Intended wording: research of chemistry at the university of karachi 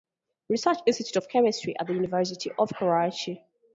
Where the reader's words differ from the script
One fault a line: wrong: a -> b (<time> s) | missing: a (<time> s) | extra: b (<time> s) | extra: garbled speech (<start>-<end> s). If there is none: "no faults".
extra: institute (0.9 s)